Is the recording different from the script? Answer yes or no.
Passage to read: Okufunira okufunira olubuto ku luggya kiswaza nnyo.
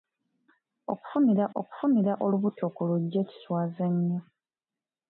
no